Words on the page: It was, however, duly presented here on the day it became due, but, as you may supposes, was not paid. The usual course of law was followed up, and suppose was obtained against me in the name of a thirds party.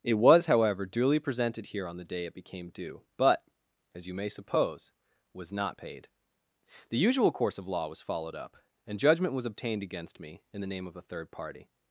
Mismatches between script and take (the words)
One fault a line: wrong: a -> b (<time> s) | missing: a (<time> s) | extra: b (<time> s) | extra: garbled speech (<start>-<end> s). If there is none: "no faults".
wrong: supposes -> suppose (4.3 s)
wrong: suppose -> judgment (9.0 s)
wrong: thirds -> third (11.0 s)